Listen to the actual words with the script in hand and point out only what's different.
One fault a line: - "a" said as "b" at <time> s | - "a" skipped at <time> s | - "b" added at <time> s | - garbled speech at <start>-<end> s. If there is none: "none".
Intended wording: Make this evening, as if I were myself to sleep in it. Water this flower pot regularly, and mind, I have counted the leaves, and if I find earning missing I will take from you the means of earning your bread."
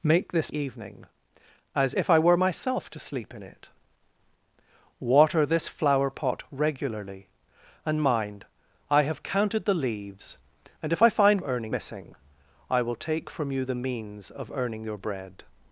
none